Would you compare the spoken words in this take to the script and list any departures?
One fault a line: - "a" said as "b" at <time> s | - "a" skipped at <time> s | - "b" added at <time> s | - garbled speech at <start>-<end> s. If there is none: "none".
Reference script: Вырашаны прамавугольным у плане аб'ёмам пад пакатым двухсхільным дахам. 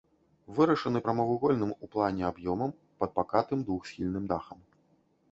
none